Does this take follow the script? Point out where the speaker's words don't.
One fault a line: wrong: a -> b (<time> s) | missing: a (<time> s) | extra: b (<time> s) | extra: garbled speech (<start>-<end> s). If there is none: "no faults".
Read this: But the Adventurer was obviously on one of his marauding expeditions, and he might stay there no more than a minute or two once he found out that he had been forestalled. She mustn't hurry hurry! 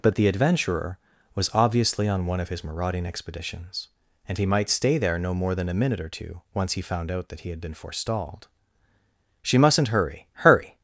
no faults